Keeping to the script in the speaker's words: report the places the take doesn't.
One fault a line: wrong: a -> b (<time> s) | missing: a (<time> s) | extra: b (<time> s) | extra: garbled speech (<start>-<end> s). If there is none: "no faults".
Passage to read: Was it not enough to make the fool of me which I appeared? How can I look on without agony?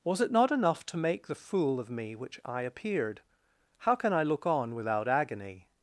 no faults